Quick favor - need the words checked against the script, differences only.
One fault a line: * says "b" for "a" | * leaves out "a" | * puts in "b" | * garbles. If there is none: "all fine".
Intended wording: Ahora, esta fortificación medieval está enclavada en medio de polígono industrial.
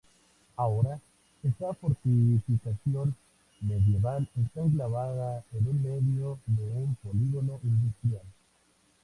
* puts in "un"